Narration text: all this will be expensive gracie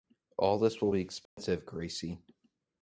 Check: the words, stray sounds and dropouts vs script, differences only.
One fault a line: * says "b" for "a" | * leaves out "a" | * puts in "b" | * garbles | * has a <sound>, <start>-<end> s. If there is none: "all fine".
* has a dropout, 1.3-1.4 s